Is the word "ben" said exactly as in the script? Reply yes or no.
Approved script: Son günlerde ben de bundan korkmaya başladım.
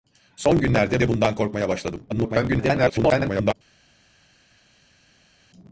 no